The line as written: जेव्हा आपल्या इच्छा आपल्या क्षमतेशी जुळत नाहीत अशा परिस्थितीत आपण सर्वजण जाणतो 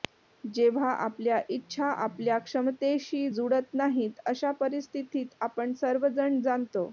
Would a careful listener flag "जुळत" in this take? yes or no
no